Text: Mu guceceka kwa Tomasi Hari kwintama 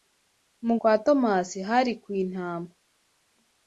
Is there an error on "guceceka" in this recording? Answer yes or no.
yes